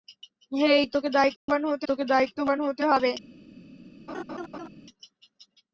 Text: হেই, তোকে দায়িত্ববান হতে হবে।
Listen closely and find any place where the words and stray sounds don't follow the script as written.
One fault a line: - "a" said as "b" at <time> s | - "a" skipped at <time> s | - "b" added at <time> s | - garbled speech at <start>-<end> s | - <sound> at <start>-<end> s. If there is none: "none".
- dropout at 1.4-1.5 s
- "তোকে দায়িত্ববান হতে" added at 1.9 s
- laugh at 4.1-4.7 s